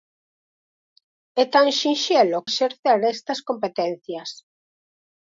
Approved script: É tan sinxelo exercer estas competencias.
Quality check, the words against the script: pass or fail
pass